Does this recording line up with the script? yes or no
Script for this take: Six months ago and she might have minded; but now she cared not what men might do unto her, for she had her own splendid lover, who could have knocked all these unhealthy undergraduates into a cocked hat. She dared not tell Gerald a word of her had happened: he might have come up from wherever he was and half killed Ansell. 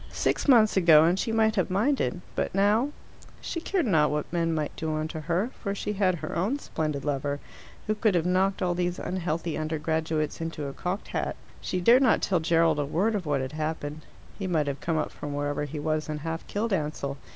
no